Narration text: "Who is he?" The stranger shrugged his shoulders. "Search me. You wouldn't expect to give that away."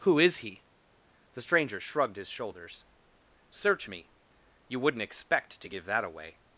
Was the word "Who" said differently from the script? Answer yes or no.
no